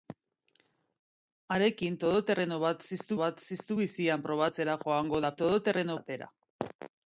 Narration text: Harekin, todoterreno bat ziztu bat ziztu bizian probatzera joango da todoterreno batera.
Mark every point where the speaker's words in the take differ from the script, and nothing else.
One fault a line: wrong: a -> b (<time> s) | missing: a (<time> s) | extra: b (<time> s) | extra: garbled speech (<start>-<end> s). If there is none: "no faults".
no faults